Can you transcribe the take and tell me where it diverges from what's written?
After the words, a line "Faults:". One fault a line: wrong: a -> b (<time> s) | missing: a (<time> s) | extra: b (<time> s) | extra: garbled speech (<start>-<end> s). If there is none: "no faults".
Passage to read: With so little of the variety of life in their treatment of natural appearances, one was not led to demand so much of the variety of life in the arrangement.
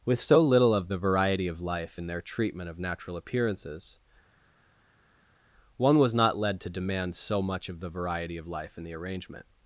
With so little of the variety of life in their treatment of natural appearances, one was not led to demand so much of the variety of life in the arrangement.
Faults:
no faults